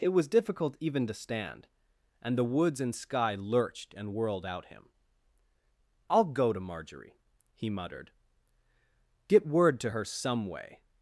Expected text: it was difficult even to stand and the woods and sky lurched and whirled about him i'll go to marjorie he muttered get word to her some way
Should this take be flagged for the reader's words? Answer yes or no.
yes